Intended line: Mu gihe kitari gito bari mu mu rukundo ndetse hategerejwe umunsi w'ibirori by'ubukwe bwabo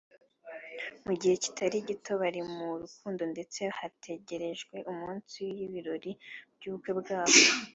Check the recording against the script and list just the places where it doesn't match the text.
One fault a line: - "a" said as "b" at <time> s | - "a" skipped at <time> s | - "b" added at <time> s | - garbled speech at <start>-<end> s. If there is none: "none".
- "mu" skipped at 2.7 s